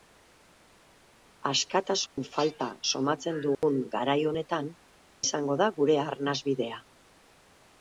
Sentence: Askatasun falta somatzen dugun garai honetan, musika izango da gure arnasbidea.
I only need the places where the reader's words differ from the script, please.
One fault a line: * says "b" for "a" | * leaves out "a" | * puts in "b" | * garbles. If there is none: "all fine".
* leaves out "musika"